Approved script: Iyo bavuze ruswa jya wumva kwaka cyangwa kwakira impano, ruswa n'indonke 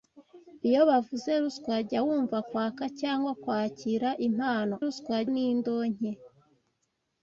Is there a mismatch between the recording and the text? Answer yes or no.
no